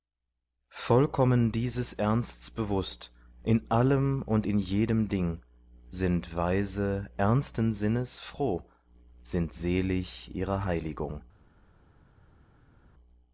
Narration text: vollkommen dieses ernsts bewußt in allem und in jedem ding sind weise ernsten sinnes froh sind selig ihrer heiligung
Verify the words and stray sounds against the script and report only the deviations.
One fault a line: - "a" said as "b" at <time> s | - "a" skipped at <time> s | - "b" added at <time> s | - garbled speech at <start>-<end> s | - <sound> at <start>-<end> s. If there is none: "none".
none